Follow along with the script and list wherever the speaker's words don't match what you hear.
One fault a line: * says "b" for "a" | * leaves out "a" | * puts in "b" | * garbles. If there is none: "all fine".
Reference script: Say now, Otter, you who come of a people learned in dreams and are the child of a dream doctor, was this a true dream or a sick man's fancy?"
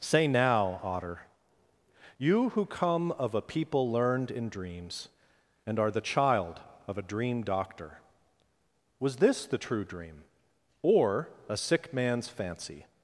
* says "the" for "a"